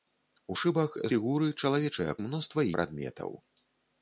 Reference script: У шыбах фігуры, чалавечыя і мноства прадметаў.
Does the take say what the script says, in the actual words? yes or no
yes